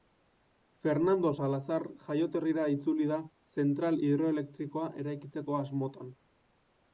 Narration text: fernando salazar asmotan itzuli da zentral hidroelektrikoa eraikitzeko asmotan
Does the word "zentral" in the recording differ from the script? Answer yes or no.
no